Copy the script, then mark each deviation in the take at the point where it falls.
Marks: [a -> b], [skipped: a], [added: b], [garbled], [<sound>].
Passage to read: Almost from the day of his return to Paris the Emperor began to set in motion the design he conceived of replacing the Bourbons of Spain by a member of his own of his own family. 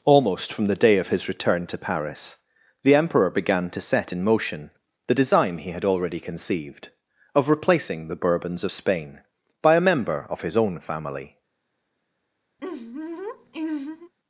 Almost from the day of his return to Paris the Emperor began to set in motion the design he [added: had already] conceived of replacing the Bourbons of Spain by a member of his own [skipped: of his own] family. [laugh]